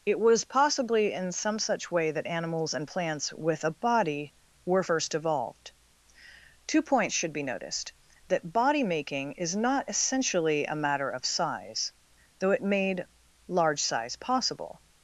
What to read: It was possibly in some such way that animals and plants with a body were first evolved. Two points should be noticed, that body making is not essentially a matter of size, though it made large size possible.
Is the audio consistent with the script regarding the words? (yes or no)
yes